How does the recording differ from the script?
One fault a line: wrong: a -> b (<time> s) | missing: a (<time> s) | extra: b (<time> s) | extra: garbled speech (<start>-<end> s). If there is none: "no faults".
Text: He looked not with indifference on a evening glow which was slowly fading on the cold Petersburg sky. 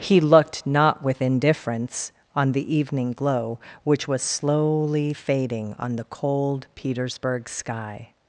wrong: a -> the (2.5 s)